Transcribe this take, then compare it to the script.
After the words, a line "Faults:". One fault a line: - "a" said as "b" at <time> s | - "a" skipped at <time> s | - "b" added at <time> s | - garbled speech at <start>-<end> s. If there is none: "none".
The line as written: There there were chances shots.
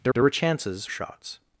There there were chances shots.
Faults:
none